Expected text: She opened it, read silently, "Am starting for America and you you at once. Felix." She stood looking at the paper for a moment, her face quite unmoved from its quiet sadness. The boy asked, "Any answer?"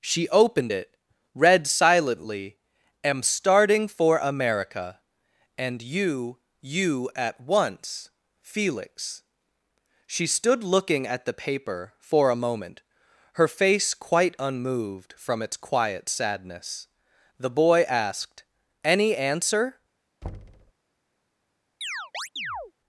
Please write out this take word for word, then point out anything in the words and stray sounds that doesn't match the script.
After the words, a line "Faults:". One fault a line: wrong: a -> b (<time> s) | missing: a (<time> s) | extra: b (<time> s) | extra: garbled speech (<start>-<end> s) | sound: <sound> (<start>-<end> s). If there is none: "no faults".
She opened it, read silently, "Am starting for America and you you at once. Felix." She stood looking at the paper for a moment, her face quite unmoved from its quiet sadness. The boy asked, "Any answer?"
Faults:
sound: thud (20.2-20.7 s)
sound: chirp (21.8-22.7 s)